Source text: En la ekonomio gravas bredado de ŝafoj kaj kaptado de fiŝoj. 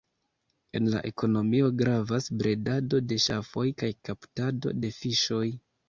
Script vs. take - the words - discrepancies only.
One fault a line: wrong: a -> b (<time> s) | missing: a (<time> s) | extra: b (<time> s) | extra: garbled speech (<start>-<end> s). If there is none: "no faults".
no faults